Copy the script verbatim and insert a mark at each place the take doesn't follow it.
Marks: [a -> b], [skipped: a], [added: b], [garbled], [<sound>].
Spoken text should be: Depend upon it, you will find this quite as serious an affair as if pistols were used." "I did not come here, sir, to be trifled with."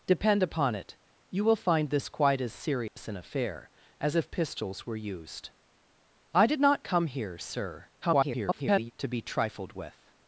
Depend upon it, you will find this quite as serious [dropout] an affair as if pistols were used." "I did not come here, sir, [garbled] to be trifled with."